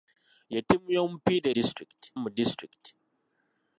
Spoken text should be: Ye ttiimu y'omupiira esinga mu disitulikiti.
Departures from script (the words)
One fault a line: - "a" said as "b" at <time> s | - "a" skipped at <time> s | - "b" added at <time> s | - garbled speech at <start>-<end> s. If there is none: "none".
- "esinga" said as "disitulikiti" at 1.6 s